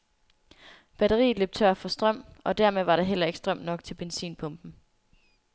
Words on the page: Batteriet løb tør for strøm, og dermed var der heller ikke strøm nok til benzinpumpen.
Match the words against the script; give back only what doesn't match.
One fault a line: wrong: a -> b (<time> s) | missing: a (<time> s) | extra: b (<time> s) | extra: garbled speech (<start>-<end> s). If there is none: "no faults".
no faults